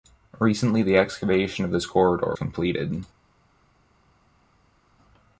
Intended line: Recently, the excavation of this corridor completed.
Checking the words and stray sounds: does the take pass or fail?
pass